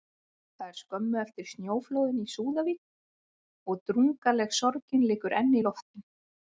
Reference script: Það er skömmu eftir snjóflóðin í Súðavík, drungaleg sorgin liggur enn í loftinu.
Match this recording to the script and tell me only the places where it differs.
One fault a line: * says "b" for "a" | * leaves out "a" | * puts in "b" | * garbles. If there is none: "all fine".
* puts in "og"